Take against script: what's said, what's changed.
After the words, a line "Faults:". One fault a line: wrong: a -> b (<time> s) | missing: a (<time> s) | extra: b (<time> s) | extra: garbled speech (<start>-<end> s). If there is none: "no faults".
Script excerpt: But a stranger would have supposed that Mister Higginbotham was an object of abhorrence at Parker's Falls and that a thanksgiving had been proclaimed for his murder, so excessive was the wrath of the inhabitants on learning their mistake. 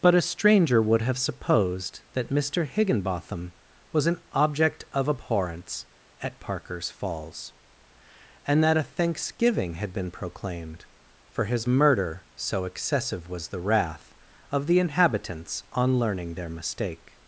But a stranger would have supposed that Mister Higginbotham was an object of abhorrence at Parker's Falls and that a thanksgiving had been proclaimed for his murder, so excessive was the wrath of the inhabitants on learning their mistake.
Faults:
no faults